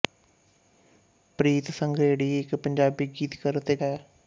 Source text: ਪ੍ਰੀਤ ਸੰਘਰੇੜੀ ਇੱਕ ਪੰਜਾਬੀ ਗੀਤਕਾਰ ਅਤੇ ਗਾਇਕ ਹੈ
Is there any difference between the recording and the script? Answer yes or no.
yes